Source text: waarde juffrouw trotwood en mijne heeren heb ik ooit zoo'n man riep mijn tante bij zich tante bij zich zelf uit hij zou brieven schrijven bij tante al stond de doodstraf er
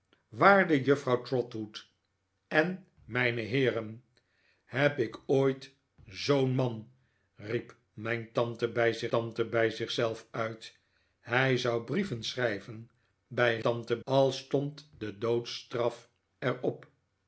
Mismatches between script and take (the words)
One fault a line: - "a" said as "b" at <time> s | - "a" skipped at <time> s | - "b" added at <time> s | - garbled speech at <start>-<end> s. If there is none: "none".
none